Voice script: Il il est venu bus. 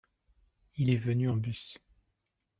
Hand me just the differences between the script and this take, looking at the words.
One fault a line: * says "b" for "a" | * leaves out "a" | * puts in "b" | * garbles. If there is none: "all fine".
* leaves out "il"
* puts in "en"